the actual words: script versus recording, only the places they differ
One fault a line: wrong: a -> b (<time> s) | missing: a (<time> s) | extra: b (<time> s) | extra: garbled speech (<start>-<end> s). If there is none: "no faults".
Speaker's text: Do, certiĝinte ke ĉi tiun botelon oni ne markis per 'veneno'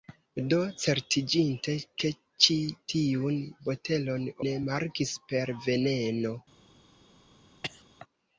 missing: oni (4.3 s)